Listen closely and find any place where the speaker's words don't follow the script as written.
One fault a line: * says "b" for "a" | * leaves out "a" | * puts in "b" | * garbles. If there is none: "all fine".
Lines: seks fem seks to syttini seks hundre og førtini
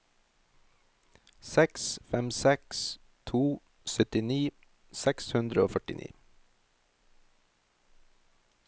all fine